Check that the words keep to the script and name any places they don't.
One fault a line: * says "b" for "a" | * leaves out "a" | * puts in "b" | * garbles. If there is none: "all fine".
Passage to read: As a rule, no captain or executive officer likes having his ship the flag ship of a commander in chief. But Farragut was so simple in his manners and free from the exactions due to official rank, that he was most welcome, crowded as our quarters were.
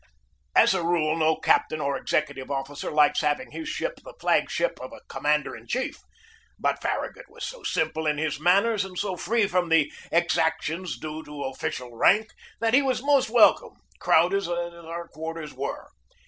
* puts in "so"